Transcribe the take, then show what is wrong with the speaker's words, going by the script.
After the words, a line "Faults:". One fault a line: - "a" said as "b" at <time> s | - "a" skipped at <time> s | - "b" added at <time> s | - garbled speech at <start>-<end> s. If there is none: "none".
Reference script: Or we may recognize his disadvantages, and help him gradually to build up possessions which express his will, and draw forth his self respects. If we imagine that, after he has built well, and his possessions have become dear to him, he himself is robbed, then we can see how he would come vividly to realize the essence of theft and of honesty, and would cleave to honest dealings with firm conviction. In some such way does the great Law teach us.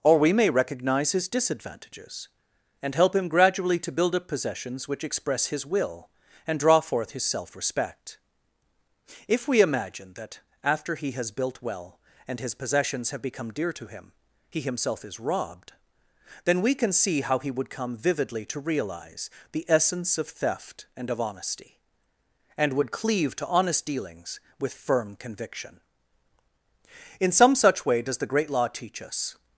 Or we may recognize his disadvantages, and help him gradually to build up possessions which express his will, and draw forth his self respect. If we imagine that, after he has built well, and his possessions have become dear to him, he himself is robbed, then we can see how he would come vividly to realize the essence of theft and of honesty, and would cleave to honest dealings with firm conviction. In some such way does the great Law teach us.
Faults:
- "respects" said as "respect" at 7.5 s